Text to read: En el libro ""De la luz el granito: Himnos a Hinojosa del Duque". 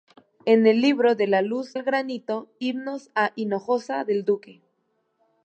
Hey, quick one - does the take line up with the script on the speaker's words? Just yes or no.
yes